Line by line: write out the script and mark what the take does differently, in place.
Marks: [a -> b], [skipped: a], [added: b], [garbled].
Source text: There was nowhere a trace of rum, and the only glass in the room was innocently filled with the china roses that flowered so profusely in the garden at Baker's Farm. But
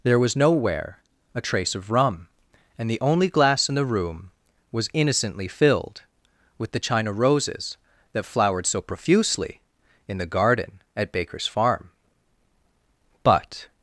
There was nowhere a trace of rum, and the only glass in the room was innocently filled with the china roses that flowered so profusely in the garden at Baker's Farm. But